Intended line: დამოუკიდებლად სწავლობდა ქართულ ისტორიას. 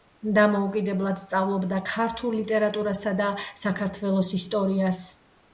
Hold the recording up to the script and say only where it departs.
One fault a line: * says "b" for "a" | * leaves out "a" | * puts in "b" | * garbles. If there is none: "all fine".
* puts in "ლიტერატურასა და საქართველოს"